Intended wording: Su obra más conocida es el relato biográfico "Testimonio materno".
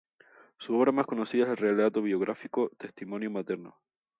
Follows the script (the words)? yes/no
yes